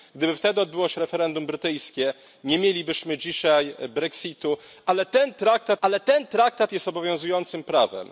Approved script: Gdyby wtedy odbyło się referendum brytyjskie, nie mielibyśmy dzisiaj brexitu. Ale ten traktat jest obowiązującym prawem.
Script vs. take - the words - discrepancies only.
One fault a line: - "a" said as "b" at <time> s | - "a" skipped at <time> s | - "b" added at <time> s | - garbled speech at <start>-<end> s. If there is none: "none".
- "ale ten traktat" added at 5.8 s